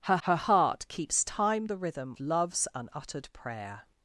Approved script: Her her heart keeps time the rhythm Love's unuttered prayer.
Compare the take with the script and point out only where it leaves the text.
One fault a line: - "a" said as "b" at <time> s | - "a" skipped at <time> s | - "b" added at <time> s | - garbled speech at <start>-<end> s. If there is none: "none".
none